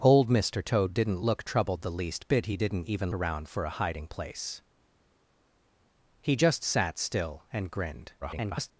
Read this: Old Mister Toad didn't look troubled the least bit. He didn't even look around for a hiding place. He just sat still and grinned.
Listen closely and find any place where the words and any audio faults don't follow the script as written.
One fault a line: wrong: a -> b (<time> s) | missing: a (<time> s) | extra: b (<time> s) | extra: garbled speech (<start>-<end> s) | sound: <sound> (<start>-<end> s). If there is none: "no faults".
missing: look (3.1 s)
extra: garbled speech (8.2-8.7 s)